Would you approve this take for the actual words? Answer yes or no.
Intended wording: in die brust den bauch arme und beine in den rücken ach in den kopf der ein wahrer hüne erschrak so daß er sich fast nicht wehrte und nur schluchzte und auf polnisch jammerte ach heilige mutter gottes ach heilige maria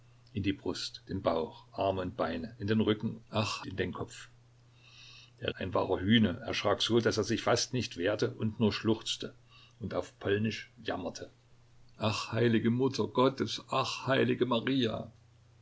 yes